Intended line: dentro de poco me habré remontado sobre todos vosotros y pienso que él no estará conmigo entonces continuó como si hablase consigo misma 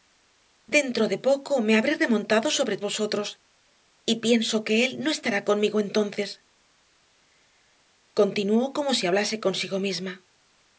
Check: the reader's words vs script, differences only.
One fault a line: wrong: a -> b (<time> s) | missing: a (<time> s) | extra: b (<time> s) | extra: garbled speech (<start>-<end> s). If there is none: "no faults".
missing: todos (2.8 s)